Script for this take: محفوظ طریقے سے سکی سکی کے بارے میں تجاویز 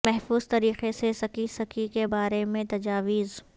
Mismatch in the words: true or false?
false